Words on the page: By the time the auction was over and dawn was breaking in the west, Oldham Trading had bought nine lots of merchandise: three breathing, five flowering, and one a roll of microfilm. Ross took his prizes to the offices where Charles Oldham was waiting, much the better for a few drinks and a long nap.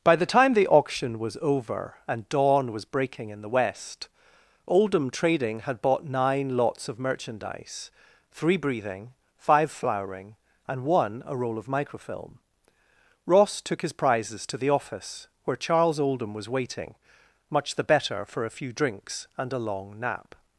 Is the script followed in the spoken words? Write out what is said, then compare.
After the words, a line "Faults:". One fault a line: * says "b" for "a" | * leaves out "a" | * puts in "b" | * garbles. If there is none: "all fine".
By the time the auction was over and dawn was breaking in the west, Oldham Trading had bought nine lots of merchandise: three breathing, five flowering, and one a roll of microfilm. Ross took his prizes to the office where Charles Oldham was waiting, much the better for a few drinks and a long nap.
Faults:
* says "office" for "offices"